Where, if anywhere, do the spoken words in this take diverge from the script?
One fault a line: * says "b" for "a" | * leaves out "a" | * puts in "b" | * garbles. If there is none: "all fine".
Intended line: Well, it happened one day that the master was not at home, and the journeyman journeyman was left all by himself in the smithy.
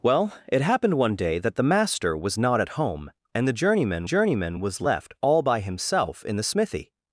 all fine